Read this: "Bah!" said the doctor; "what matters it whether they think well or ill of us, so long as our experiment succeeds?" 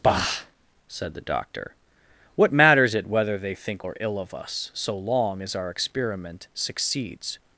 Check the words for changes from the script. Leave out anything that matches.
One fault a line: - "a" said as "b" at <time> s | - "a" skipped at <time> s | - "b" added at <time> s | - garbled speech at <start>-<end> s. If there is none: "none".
- "well" skipped at 3.9 s